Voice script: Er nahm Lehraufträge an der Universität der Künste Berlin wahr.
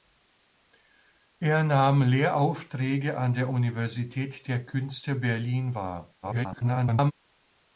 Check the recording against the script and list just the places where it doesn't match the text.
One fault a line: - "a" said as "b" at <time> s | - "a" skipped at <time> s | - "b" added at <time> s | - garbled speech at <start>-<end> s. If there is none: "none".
- garbled speech at 6.2-7.1 s